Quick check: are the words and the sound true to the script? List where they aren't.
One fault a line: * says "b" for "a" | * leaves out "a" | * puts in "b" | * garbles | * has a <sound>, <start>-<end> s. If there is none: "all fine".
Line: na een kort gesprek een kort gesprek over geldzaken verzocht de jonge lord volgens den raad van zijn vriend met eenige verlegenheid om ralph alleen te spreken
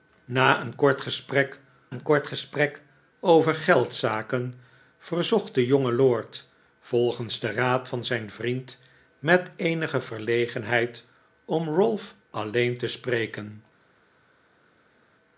all fine